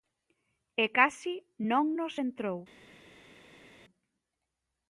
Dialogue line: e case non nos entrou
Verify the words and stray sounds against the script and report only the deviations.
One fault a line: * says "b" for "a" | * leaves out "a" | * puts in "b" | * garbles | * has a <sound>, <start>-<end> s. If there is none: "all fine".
all fine